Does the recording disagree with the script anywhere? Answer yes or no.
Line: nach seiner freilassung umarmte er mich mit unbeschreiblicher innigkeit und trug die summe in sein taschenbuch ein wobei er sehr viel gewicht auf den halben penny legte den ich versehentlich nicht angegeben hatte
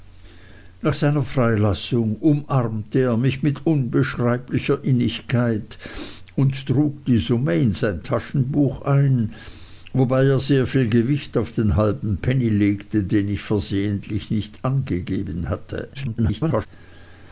yes